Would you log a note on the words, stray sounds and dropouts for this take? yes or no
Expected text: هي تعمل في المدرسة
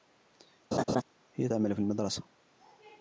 yes